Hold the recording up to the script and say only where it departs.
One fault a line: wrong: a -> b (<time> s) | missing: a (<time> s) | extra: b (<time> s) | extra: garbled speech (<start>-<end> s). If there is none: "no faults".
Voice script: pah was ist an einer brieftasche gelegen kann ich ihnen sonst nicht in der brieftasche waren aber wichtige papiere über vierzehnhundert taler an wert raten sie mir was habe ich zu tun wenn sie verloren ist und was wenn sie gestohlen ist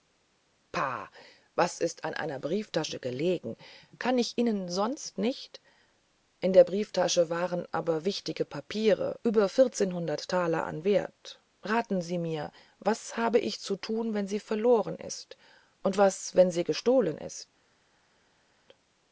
no faults